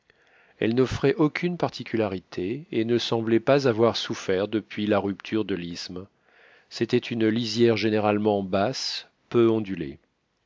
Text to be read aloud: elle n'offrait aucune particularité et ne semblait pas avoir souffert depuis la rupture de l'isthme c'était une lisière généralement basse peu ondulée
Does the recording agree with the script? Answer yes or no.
yes